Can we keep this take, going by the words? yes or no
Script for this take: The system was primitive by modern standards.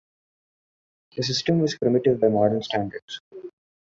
yes